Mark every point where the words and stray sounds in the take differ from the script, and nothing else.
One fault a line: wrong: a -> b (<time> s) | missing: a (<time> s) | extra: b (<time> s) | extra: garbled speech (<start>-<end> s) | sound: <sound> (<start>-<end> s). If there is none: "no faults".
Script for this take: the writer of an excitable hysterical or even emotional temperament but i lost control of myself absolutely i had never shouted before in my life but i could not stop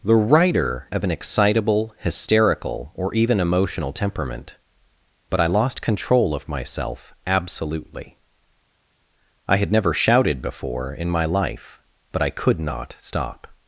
no faults